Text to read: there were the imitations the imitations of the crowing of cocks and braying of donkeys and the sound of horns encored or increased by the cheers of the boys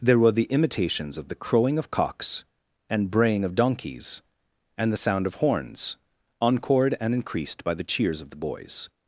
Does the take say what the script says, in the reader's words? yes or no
no